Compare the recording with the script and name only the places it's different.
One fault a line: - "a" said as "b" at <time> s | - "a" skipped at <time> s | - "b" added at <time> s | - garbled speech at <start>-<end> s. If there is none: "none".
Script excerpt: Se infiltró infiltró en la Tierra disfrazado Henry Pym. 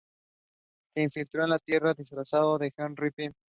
- "infiltró" skipped at 1.4 s
- "de" added at 2.6 s